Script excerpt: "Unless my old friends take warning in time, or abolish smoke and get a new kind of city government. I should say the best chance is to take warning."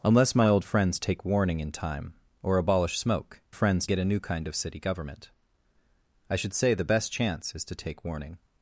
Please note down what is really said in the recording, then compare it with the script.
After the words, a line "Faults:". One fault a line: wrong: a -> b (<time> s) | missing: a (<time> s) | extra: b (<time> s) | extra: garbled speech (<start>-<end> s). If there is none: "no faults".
"Unless my old friends take warning in time, or abolish smoke friends get a new kind of city government. I should say the best chance is to take warning."
Faults:
wrong: and -> friends (3.5 s)